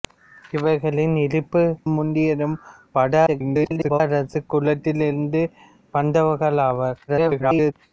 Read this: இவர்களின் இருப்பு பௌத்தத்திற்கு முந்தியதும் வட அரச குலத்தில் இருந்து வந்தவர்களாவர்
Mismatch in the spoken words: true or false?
true